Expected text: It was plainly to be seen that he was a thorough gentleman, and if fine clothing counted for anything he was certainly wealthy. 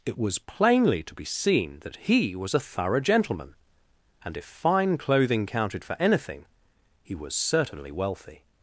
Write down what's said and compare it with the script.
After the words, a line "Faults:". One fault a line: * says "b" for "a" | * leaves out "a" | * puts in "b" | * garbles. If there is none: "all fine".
It was plainly to be seen that he was a thorough gentleman, and if fine clothing counted for anything he was certainly wealthy.
Faults:
all fine